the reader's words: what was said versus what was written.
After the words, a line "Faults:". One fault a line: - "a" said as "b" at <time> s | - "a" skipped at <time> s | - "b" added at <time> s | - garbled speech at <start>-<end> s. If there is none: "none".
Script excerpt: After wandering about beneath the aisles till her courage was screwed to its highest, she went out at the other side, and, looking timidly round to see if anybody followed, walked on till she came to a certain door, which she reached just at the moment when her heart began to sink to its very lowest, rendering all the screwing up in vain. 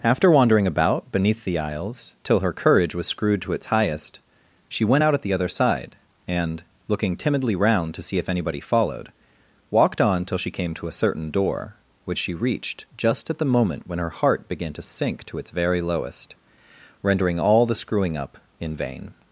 After wandering about beneath the aisles till her courage was screwed to its highest, she went out at the other side, and, looking timidly round to see if anybody followed, walked on till she came to a certain door, which she reached just at the moment when her heart began to sink to its very lowest, rendering all the screwing up in vain.
Faults:
none